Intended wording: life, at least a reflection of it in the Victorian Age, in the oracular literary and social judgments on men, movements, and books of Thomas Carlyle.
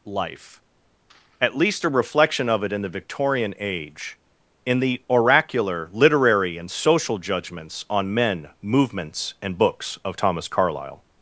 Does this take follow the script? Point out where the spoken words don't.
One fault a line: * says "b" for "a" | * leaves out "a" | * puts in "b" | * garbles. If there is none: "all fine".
all fine